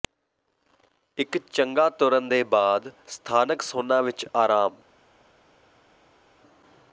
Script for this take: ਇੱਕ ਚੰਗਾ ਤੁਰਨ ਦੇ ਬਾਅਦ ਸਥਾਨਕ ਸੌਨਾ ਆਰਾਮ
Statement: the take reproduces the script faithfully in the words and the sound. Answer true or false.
false